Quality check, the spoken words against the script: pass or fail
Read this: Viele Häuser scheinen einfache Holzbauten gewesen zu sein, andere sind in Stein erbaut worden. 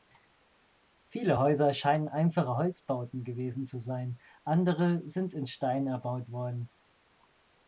pass